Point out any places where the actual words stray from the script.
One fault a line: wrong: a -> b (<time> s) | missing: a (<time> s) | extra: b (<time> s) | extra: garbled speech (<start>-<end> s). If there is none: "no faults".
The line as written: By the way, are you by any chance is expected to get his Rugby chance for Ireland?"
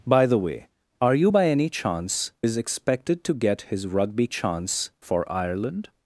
no faults